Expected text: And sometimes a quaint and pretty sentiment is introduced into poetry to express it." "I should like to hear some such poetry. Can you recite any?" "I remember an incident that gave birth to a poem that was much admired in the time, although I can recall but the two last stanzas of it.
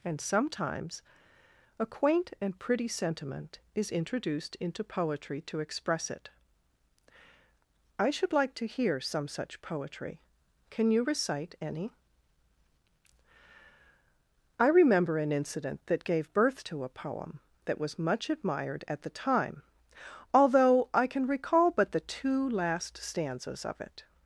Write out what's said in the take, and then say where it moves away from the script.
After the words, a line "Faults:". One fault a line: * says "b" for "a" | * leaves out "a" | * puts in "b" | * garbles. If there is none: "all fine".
And sometimes a quaint and pretty sentiment is introduced into poetry to express it." "I should like to hear some such poetry. Can you recite any?" "I remember an incident that gave birth to a poem that was much admired at the time, although I can recall but the two last stanzas of it.
Faults:
* says "at" for "in"